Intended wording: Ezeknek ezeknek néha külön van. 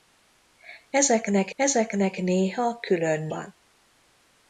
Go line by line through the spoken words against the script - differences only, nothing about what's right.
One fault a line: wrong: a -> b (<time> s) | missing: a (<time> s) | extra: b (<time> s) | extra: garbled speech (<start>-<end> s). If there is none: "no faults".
no faults